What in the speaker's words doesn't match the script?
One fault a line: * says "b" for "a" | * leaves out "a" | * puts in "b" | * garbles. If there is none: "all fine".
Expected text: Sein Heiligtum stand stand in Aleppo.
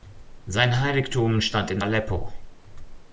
* leaves out "stand"